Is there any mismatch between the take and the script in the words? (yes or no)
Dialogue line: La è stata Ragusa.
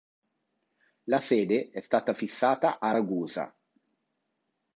yes